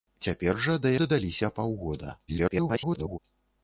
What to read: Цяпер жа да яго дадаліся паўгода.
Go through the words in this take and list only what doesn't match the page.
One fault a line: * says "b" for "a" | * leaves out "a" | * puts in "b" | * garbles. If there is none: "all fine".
* leaves out "яго"
* garbles